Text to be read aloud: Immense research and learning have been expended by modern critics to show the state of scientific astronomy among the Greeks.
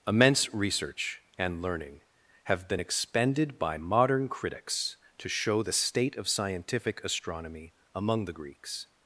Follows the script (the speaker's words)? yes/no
yes